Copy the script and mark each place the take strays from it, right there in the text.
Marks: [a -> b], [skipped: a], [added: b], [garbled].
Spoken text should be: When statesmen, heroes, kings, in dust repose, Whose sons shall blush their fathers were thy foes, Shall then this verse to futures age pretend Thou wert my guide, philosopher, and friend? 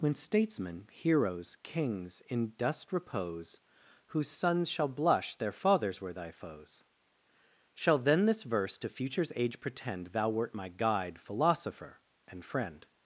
When statesmen, heroes, kings, in dust repose, Whose sons shall blush their fathers were thy foes, Shall then this verse to futures age pretend Thou wert my guide, philosopher, and friend?